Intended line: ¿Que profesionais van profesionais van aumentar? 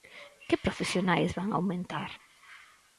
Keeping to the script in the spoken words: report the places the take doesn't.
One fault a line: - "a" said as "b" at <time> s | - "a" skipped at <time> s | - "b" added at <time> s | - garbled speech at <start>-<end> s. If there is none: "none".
- "profesionais van" skipped at 1.5 s